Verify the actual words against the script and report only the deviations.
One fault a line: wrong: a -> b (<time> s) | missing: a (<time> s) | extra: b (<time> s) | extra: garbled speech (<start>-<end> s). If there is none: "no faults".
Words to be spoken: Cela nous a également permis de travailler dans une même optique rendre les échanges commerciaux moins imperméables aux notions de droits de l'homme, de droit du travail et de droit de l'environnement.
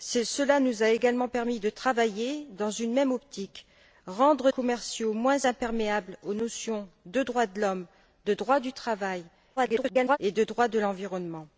missing: les échanges (4.5 s)
extra: garbled speech (9.6-10.2 s)